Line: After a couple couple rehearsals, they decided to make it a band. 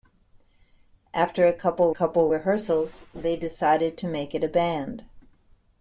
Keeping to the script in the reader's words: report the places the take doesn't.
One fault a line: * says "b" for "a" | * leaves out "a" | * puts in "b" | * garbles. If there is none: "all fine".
all fine